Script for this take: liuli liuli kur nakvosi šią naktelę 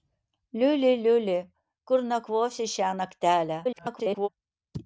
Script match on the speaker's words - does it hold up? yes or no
no